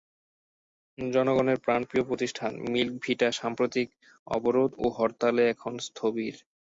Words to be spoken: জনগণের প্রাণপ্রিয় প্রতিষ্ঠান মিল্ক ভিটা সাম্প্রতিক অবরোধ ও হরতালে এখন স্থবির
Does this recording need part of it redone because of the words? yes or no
no